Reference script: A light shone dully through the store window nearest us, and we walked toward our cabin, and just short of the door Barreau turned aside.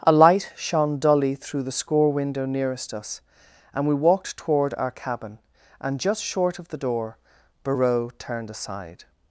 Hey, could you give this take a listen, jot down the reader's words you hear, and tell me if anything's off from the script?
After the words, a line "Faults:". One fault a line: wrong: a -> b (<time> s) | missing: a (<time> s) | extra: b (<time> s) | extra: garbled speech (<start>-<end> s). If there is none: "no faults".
A light shone dully through the score window nearest us, and we walked toward our cabin, and just short of the door Barreau turned aside.
Faults:
wrong: store -> score (1.7 s)